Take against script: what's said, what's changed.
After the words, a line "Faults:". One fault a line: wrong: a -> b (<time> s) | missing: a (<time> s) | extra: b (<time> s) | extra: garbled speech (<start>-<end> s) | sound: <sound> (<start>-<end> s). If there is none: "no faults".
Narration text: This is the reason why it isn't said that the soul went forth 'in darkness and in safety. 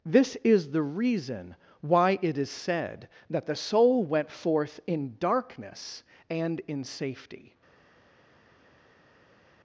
This is the reason why it is said that the soul went forth 'in darkness and in safety.
Faults:
wrong: isn't -> is (2.4 s)